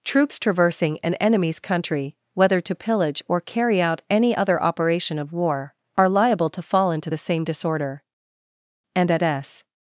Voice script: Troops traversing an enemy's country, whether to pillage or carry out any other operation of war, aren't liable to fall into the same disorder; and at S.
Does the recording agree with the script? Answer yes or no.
no